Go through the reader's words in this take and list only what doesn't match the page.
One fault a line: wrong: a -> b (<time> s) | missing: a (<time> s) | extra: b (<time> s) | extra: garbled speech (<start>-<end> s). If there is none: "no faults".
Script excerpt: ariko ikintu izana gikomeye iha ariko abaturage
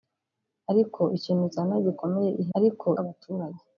no faults